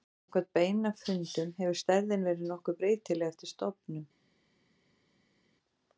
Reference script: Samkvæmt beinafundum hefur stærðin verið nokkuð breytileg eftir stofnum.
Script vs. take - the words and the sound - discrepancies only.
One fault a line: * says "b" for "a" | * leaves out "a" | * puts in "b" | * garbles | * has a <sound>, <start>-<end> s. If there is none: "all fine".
all fine